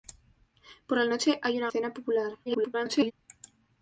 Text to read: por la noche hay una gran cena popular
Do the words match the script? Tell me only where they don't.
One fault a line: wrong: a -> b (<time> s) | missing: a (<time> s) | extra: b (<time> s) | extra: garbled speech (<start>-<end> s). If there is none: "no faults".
missing: gran (1.7 s)
extra: garbled speech (2.5-3.1 s)